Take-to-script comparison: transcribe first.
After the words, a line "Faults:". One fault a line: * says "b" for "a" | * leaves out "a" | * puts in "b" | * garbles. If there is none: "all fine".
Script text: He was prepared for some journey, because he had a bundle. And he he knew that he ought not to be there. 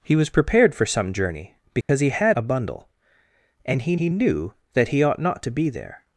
He was prepared for some journey, because he had a bundle. And he he knew that he ought not to be there.
Faults:
all fine